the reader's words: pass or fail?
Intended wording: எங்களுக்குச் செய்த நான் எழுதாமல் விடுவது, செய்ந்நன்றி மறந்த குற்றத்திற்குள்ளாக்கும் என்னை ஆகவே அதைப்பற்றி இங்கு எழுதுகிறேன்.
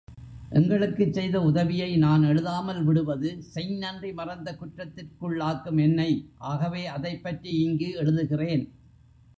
fail